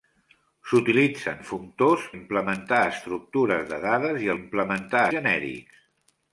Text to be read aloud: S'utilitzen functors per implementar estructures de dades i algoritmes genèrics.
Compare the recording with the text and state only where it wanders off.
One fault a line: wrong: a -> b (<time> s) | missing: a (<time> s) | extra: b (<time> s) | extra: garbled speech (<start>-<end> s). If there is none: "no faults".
missing: per (2.1 s)
wrong: algoritmes -> implementar (4.4 s)